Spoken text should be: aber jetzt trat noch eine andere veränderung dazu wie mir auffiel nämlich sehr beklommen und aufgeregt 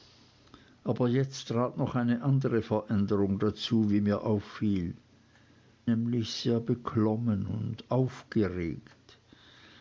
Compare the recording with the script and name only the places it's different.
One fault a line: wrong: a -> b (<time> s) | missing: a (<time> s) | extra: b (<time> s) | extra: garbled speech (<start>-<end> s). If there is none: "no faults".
no faults